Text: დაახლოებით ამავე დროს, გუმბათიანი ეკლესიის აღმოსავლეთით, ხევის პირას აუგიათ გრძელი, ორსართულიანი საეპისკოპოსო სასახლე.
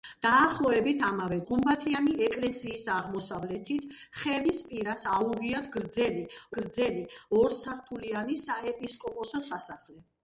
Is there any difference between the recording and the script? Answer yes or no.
yes